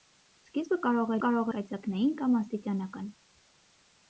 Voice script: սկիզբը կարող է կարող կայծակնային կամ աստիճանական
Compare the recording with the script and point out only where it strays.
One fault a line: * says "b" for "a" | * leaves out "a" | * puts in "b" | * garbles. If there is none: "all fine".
all fine